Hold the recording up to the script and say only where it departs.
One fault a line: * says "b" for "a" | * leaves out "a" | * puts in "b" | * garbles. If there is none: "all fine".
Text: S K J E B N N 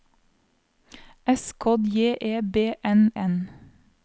all fine